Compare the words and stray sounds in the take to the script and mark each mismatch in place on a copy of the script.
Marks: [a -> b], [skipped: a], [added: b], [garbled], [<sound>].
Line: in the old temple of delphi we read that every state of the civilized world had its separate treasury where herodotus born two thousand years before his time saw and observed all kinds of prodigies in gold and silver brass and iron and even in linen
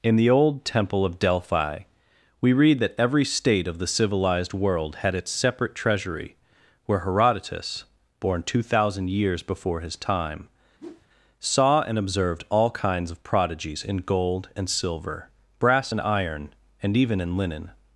in the old temple of delphi we read that every state of the civilized world had its separate treasury where herodotus born two thousand years before his time [whoosh] saw and observed all kinds of prodigies in gold and silver brass and iron and even in linen